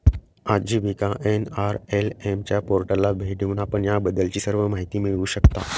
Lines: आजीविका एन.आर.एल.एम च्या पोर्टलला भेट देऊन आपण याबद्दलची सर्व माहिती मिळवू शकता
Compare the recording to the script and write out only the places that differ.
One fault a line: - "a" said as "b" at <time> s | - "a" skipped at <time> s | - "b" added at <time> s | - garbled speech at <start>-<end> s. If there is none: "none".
none